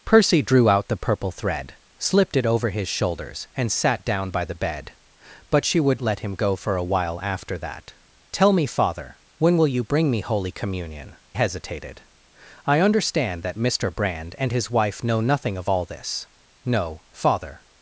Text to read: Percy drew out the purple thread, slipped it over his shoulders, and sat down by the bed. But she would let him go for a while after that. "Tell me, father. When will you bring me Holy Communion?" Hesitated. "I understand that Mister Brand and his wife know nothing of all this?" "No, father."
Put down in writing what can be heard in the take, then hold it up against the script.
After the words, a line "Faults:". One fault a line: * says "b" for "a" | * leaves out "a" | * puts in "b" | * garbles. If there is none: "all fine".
Percy drew out the purple thread, slipped it over his shoulders, and sat down by the bed. But she would let him go for a while after that. "Tell me, father. When will you bring me Holy Communion?" Hesitated. "I understand that Mister Brand and his wife know nothing of all this?" "No, father."
Faults:
all fine